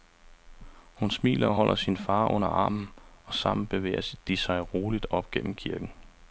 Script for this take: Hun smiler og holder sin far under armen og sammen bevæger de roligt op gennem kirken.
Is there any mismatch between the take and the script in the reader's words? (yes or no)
yes